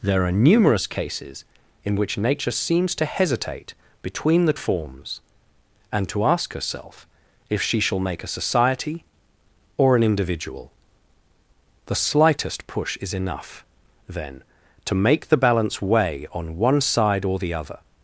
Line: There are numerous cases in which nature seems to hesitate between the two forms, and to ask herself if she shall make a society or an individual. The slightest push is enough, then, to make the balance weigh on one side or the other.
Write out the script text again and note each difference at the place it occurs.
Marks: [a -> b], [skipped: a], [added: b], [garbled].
There are numerous cases in which nature seems to hesitate between the [skipped: two] forms, and to ask herself if she shall make a society or an individual. The slightest push is enough, then, to make the balance weigh on one side or the other.